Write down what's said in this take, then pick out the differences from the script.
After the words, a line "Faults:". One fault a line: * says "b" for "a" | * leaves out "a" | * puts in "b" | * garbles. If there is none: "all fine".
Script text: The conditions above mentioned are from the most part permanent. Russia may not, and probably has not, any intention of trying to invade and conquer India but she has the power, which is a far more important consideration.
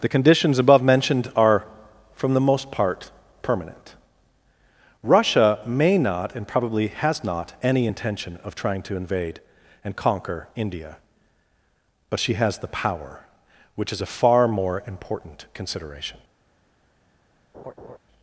The conditions above mentioned are from the most part permanent. Russia may not, and probably has not, any intention of trying to invade and conquer India but she has the power, which is a far more important consideration.
Faults:
all fine